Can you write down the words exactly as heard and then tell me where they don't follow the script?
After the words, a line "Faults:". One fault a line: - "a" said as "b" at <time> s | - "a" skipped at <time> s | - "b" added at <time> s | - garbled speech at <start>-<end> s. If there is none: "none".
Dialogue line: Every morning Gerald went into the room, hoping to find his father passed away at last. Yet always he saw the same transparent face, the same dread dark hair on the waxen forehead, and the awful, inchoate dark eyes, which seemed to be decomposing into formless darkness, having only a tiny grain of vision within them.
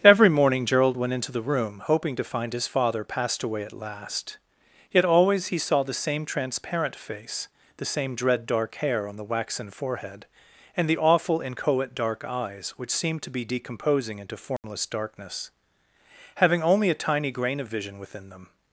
Every morning Gerald went into the room, hoping to find his father passed away at last. Yet always he saw the same transparent face, the same dread dark hair on the waxen forehead, and the awful, inchoate dark eyes, which seemed to be decomposing into formless darkness, having only a tiny grain of vision within them.
Faults:
none